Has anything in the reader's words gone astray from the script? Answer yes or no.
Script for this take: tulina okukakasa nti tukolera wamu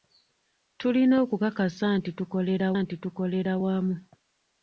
yes